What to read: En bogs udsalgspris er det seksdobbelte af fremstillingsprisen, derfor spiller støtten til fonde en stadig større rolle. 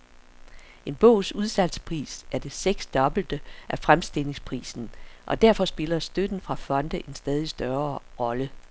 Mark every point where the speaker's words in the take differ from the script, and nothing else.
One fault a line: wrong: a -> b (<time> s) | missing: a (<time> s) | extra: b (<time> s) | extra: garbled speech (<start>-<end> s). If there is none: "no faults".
extra: og (5.2 s)
wrong: til -> fra (6.4 s)